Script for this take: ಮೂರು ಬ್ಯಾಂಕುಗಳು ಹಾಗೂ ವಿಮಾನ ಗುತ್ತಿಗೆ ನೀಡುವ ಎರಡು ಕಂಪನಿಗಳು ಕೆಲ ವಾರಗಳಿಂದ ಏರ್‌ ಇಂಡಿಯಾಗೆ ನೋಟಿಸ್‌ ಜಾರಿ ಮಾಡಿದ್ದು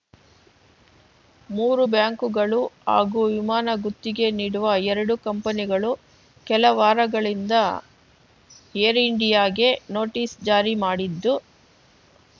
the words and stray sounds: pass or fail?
pass